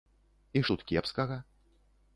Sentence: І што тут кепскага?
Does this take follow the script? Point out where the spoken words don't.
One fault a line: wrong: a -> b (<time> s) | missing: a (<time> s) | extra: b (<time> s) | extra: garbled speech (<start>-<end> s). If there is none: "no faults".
missing: што (0.6 s)